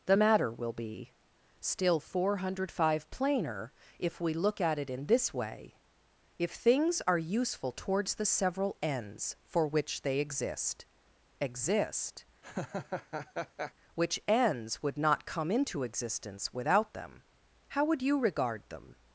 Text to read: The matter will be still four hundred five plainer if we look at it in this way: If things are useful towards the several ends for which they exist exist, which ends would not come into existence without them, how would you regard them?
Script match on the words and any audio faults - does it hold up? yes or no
no